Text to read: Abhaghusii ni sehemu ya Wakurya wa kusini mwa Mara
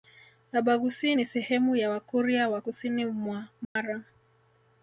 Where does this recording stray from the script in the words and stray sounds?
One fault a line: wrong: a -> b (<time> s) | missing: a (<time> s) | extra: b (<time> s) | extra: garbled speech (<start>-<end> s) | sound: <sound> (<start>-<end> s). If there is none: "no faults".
sound: dropout (3.6-3.8 s)